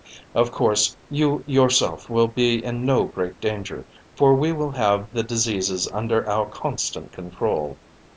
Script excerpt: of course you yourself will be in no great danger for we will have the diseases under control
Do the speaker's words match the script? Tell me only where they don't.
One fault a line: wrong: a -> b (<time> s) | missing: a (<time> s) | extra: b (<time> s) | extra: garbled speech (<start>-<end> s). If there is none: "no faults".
extra: our constant (6.3 s)